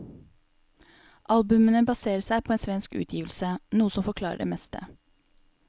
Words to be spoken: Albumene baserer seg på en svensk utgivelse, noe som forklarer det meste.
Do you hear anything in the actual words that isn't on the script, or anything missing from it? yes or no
no